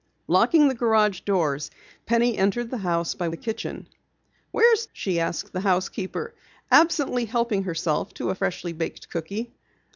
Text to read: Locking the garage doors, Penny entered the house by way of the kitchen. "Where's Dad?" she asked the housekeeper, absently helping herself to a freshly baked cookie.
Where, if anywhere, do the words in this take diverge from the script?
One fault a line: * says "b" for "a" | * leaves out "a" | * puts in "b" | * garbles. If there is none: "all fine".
* leaves out "way of"
* leaves out "Dad"